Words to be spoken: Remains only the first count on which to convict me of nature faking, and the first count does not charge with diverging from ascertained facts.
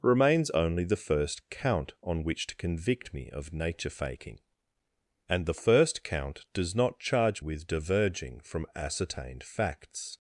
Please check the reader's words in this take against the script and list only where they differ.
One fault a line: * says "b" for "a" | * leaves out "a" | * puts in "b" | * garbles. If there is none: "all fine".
all fine